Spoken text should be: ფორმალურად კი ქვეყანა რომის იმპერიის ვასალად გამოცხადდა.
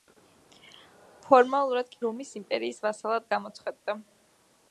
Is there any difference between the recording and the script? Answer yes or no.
yes